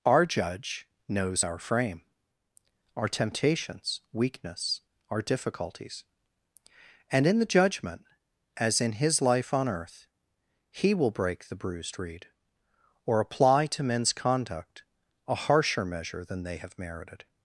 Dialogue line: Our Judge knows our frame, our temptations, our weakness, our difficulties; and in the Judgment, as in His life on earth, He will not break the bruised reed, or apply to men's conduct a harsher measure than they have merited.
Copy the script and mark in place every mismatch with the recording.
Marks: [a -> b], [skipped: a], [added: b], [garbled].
Our Judge knows our frame, our temptations, [skipped: our] weakness, our difficulties; and in the Judgment, as in His life on earth, He will [skipped: not] break the bruised reed, or apply to men's conduct a harsher measure than they have merited.